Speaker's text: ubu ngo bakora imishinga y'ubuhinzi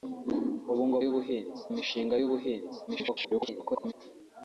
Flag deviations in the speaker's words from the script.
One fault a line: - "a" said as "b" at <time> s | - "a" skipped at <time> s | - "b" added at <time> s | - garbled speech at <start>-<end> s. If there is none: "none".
- "bakora" said as "y'ubuhinzi" at 1.0 s
- garbled speech at 2.9-3.9 s